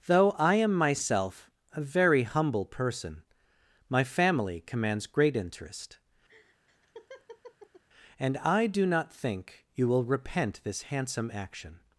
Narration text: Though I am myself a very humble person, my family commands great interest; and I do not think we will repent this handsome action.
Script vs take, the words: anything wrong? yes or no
yes